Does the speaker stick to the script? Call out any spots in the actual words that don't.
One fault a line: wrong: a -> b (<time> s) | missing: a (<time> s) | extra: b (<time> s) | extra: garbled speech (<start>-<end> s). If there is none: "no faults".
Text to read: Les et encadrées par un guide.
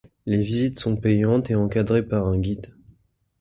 extra: visites sont payantes (0.4 s)